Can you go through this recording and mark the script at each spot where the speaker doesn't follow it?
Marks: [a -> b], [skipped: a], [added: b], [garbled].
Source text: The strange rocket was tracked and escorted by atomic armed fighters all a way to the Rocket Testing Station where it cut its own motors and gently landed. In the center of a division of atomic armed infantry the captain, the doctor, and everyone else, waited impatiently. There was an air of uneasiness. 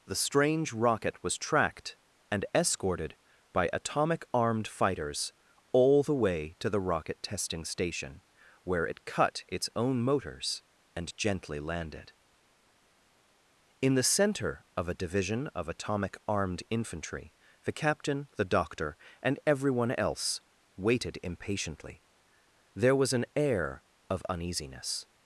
The strange rocket was tracked and escorted by atomic armed fighters all [a -> the] way to the Rocket Testing Station where it cut its own motors and gently landed. In the center of a division of atomic armed infantry the captain, the doctor, and everyone else, waited impatiently. There was an air of uneasiness.